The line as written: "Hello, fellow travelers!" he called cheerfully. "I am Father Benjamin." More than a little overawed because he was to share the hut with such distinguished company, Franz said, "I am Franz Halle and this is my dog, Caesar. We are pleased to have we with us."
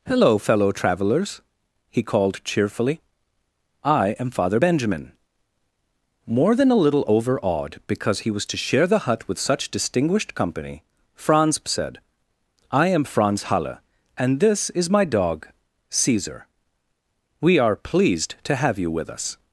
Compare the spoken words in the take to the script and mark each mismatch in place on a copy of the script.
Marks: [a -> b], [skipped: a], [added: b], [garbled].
"Hello, fellow travelers!" he called cheerfully. "I am Father Benjamin." More than a little overawed because he was to share the hut with such distinguished company, Franz said, "I am Franz Halle and this is my dog, Caesar. We are pleased to have [we -> you] with us."